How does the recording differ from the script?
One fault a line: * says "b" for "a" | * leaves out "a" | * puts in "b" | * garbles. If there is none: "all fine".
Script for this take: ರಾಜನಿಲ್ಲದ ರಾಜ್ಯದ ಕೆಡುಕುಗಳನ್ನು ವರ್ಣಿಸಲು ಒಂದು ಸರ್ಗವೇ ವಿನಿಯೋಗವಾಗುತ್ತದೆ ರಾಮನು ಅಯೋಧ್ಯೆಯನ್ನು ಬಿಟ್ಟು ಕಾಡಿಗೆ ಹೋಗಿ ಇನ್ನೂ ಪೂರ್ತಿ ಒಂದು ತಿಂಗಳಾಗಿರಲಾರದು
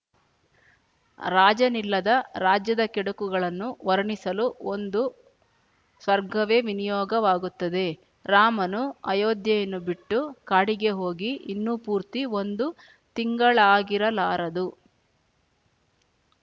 all fine